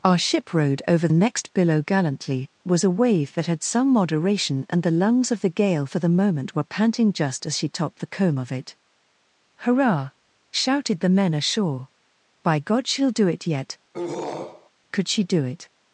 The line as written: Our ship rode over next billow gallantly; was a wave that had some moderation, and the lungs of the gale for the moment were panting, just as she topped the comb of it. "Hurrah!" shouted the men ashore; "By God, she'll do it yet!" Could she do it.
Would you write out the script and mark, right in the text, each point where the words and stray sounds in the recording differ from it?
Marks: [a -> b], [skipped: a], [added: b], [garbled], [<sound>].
Our ship rode over next billow gallantly; was a wave that had some moderation, and the lungs of the gale for the moment were panting, just as she topped the comb of it. "Hurrah!" shouted the men ashore; "By God, she'll do it yet!" [throat clearing] Could she do it.